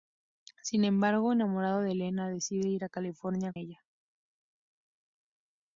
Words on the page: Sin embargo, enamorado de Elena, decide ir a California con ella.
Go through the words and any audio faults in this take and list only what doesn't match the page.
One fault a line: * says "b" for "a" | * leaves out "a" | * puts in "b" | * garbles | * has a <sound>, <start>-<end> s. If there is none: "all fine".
* leaves out "con"